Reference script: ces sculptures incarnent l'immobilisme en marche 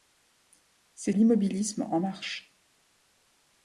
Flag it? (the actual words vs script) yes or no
yes